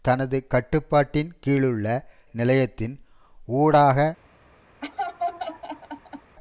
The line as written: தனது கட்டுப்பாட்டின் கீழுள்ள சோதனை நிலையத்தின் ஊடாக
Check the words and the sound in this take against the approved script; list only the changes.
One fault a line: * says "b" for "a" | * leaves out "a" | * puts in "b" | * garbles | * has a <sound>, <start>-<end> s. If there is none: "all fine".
* leaves out "சோதனை"
* has a laugh, 4.8-6.4 s